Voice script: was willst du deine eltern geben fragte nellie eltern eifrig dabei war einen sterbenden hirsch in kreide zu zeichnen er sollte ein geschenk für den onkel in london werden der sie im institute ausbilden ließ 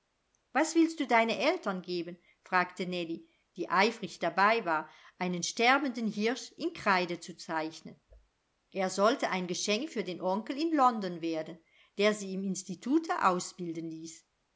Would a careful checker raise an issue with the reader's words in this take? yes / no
yes